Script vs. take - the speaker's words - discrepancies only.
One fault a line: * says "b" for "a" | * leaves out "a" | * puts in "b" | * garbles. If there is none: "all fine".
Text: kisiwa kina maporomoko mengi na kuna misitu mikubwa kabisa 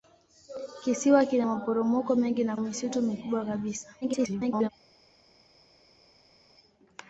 * leaves out "kuna"
* garbles